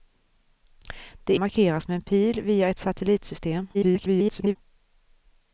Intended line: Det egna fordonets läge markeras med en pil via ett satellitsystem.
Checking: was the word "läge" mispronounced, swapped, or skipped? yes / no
yes